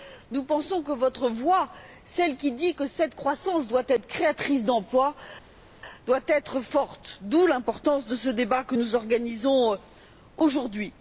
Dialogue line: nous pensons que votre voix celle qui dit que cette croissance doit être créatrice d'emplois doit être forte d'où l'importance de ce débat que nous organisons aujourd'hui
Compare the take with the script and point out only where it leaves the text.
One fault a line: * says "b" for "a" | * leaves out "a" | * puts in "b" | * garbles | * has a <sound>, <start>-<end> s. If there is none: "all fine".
all fine